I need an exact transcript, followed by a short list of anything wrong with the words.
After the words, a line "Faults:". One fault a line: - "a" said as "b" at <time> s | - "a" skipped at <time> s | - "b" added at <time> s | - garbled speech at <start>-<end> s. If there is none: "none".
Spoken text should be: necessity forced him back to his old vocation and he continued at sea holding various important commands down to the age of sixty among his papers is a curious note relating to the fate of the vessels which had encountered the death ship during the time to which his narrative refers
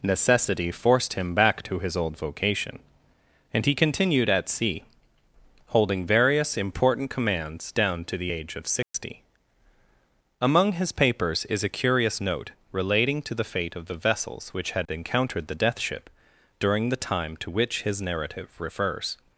necessity forced him back to his old vocation and he continued at sea holding various important commands down to the age of sixty among his papers is a curious note relating to the fate of the vessels which had encountered the death ship during the time to which his narrative refers
Faults:
none